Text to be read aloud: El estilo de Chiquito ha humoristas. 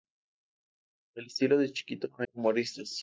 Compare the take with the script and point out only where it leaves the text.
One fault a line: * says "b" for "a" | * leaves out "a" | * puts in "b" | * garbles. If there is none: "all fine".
all fine